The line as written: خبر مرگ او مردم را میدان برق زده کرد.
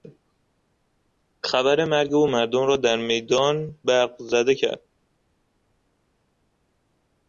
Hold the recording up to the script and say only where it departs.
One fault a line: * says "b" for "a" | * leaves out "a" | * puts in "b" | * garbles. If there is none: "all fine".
* puts in "در"